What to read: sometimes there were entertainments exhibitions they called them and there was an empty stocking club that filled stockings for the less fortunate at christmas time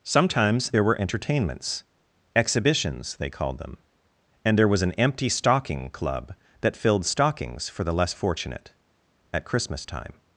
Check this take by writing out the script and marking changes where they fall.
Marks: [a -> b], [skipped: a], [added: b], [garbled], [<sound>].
sometimes there were entertainments exhibitions they called them and there was an empty stocking club that filled stockings for the less fortunate at christmas time